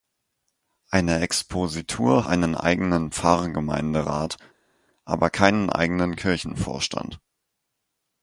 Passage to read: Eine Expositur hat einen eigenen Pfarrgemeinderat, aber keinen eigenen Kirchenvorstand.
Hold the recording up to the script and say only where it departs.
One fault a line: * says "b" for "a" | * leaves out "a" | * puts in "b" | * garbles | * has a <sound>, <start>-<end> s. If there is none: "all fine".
* leaves out "hat"